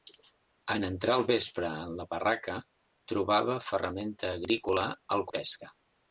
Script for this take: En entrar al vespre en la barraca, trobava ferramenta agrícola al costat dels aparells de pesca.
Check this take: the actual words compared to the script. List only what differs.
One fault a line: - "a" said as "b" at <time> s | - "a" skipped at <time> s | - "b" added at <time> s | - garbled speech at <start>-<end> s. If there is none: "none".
- "costat dels aparells" skipped at 5.3 s